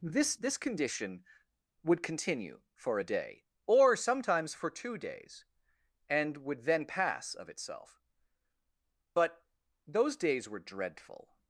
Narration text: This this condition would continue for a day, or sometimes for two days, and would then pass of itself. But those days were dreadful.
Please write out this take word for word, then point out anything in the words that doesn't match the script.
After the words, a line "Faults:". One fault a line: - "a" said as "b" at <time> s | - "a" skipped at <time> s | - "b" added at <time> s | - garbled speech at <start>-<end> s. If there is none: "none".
This this condition would continue for a day, or sometimes for two days, and would then pass of itself. But those days were dreadful.
Faults:
none